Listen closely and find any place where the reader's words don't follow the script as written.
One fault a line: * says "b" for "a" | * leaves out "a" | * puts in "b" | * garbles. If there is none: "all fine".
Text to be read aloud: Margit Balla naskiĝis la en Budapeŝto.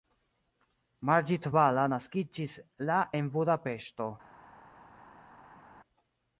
all fine